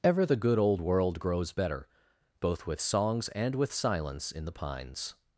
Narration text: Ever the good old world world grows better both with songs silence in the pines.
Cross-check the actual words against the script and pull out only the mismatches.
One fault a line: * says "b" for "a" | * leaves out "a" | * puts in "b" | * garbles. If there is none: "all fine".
* leaves out "world"
* puts in "and with"